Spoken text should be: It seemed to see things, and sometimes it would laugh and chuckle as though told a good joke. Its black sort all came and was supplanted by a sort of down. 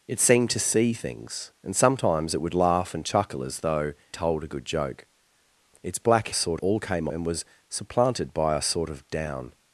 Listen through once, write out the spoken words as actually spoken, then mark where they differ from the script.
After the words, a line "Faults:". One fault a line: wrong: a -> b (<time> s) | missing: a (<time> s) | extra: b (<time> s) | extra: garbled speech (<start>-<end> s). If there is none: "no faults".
It seemed to see things, and sometimes it would laugh and chuckle as though told a good joke. Its black sort all came and was supplanted by a sort of down.
Faults:
no faults